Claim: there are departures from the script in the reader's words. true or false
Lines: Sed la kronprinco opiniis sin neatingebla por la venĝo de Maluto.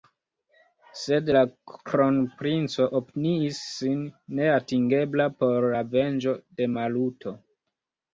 false